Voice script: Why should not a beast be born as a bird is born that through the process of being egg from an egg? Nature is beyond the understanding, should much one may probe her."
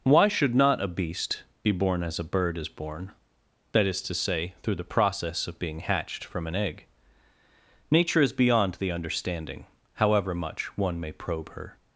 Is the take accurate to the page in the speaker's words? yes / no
no